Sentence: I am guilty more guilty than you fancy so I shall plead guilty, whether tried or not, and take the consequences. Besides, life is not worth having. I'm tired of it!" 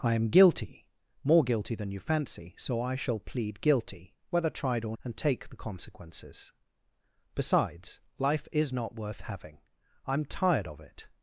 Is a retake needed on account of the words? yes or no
yes